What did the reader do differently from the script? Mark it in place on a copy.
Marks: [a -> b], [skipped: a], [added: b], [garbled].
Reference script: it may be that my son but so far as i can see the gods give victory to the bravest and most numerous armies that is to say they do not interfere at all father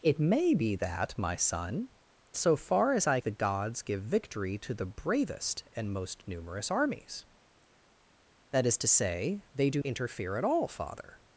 it may be that my son [skipped: but] so far as i [skipped: can see] the gods give victory to the bravest and most numerous armies that is to say they do [skipped: not] interfere at all father